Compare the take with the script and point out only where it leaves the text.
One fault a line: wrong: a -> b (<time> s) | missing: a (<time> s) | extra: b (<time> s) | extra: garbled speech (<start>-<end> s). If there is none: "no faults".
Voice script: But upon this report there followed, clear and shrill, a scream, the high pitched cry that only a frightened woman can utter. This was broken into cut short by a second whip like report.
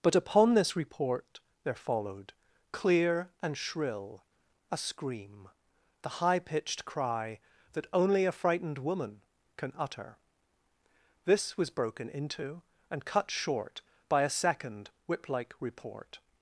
extra: and (12.9 s)